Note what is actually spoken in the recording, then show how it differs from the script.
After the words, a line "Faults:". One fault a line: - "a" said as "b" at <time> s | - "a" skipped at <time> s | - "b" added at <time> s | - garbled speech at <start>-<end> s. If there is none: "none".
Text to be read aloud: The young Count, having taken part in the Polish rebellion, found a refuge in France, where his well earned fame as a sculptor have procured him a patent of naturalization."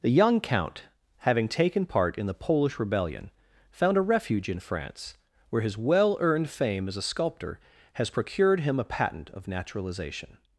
The young Count, having taken part in the Polish rebellion, found a refuge in France, where his well earned fame as a sculptor has procured him a patent of naturalization."
Faults:
- "have" said as "has" at 7.9 s